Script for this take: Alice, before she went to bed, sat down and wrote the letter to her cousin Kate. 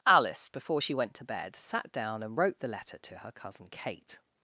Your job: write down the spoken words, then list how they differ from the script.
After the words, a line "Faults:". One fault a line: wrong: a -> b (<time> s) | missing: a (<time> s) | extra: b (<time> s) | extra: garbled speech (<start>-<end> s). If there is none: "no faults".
Alice, before she went to bed, sat down and wrote the letter to her cousin Kate.
Faults:
no faults